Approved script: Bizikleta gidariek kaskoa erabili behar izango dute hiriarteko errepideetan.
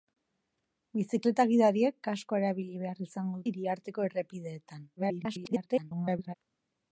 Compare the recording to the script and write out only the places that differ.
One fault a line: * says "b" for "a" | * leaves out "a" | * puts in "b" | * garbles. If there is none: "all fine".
* leaves out "dute"
* garbles